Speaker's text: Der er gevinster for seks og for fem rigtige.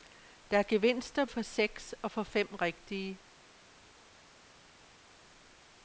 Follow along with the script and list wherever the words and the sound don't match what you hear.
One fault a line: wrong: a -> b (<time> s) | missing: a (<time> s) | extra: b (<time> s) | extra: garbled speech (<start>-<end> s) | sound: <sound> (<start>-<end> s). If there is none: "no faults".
no faults